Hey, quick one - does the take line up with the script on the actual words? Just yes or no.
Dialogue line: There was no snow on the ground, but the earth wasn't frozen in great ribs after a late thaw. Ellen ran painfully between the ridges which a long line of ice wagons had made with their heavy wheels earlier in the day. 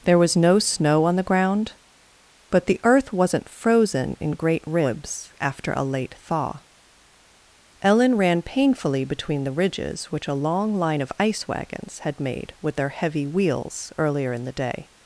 yes